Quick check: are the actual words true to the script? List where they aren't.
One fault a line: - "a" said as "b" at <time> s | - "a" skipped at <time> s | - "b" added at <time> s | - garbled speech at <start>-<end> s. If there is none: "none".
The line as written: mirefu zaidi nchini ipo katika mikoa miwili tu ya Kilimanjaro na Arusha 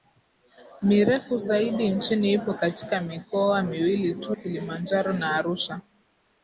- "ya" skipped at 4.4 s